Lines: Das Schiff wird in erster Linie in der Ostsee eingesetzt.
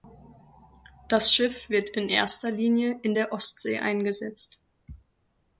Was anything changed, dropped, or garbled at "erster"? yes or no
no